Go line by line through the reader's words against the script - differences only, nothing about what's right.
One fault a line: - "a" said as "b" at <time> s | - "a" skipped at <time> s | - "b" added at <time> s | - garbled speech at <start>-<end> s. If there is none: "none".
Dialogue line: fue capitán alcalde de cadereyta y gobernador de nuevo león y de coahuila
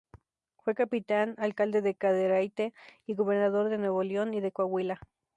none